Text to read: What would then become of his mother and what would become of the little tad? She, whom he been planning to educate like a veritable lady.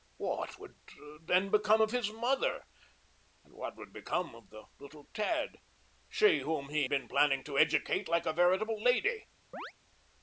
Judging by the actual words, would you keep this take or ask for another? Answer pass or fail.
pass